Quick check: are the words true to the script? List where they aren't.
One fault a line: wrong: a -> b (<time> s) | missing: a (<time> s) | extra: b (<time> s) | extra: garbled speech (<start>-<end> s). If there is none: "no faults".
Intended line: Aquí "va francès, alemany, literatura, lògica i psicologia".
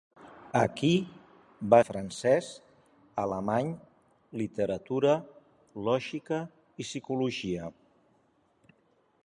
no faults